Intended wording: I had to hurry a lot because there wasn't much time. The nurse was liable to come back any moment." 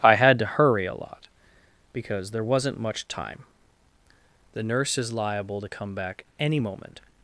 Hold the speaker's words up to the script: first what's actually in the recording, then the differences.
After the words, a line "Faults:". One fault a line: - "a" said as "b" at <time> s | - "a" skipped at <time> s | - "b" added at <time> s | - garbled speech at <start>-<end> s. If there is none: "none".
I had to hurry a lot because there wasn't much time. The nurse is liable to come back any moment."
Faults:
- "was" said as "is" at 5.0 s